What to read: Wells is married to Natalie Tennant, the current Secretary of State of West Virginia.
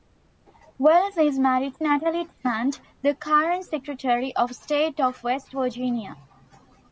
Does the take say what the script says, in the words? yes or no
yes